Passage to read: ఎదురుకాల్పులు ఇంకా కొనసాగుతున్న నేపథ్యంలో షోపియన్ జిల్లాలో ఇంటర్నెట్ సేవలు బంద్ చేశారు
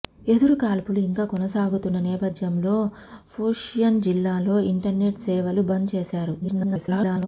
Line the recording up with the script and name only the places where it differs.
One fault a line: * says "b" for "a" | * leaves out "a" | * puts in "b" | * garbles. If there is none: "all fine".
* garbles